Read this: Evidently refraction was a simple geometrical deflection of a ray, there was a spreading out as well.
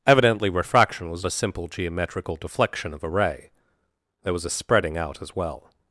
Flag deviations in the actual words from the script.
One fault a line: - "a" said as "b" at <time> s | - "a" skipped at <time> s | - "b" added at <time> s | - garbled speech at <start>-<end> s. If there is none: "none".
none